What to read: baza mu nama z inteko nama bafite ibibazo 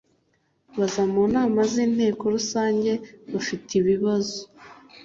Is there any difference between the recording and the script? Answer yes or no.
yes